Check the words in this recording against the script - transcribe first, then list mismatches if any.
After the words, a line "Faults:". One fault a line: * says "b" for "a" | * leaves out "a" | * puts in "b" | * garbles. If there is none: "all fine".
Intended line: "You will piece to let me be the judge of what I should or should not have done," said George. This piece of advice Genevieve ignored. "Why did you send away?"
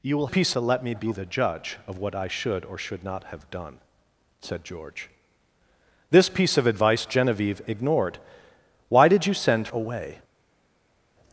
"You will piece to let me be the judge of what I should or should not have done," said George. This piece of advice Genevieve ignored. "Why did you send away?"
Faults:
all fine